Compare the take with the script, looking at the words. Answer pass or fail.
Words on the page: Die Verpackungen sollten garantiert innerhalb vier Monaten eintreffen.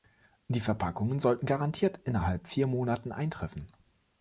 pass